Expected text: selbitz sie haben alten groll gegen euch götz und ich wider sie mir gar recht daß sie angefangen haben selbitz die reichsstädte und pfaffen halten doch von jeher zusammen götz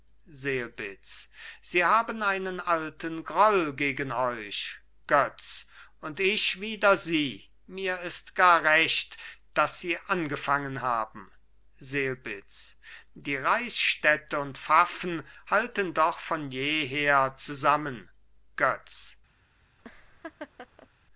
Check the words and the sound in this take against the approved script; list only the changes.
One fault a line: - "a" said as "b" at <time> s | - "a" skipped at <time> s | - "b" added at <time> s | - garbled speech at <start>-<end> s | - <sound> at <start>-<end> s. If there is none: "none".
- "einen" added at 2.2 s
- "ist" added at 8.0 s
- laugh at 19.8-20.9 s